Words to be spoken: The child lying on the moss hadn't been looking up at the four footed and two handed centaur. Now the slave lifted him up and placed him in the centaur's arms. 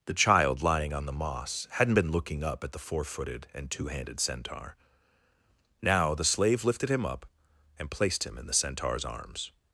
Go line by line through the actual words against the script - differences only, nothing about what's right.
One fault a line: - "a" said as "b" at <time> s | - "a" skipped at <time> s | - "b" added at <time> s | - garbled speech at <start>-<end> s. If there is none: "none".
none